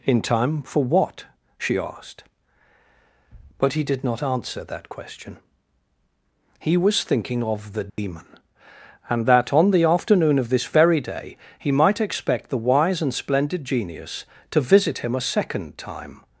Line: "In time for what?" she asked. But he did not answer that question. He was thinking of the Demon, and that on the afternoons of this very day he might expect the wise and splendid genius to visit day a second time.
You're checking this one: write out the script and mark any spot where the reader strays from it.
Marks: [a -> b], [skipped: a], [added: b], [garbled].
"In time for what?" she asked. But he did not answer that question. He was thinking of the Demon, and that on the [afternoons -> afternoon] of this very day he might expect the wise and splendid genius to visit [day -> him] a second time.